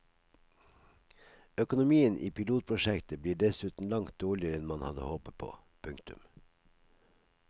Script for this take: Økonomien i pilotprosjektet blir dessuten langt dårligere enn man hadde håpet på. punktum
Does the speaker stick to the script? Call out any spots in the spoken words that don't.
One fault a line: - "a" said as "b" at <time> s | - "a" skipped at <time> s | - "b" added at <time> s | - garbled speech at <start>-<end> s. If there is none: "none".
none